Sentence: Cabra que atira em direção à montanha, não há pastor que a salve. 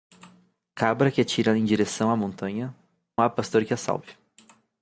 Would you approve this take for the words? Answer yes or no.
no